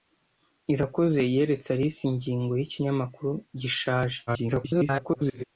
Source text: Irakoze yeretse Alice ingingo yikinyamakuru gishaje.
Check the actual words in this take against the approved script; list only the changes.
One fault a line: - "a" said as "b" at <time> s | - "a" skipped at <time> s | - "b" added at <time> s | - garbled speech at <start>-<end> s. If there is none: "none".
- garbled speech at 4.3-5.4 s